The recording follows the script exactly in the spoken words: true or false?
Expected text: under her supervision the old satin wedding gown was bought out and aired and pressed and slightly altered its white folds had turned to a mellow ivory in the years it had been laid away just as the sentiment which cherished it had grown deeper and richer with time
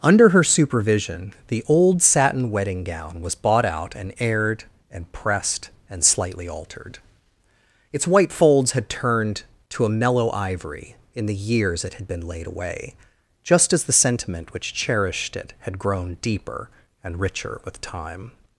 true